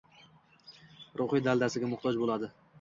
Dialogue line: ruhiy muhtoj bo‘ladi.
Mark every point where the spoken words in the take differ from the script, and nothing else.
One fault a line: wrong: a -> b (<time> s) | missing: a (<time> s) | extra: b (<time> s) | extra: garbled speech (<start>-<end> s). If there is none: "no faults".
extra: daldasiga (1.5 s)